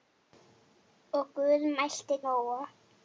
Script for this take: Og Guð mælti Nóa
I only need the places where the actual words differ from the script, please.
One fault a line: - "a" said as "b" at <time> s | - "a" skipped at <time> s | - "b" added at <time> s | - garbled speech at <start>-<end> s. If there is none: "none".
none